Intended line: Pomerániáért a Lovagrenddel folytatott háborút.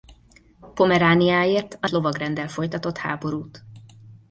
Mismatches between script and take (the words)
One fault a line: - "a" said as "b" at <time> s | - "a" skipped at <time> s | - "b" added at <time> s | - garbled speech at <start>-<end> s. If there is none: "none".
none